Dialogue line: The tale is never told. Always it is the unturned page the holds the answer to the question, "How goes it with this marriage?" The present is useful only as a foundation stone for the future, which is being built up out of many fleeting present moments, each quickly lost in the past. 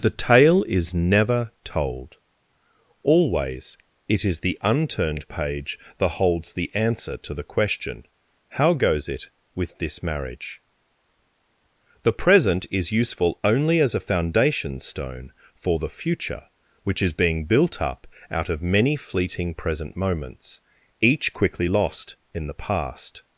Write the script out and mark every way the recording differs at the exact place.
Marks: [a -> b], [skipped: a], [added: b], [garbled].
The tale is never told. Always it is the unturned page [the -> that] holds the answer to the question, "How goes it with this marriage?" The present is useful only as a foundation stone for the future, which is being built up out of many fleeting present moments, each quickly lost in the past.